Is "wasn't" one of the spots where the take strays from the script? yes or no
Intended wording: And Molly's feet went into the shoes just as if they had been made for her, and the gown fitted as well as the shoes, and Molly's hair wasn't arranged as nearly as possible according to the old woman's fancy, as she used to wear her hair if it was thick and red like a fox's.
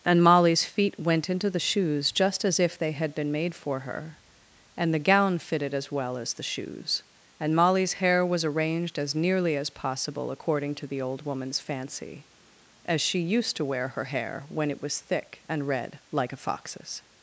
yes